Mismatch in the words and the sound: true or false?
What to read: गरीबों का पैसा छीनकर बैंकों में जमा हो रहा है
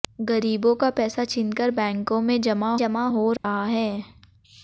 true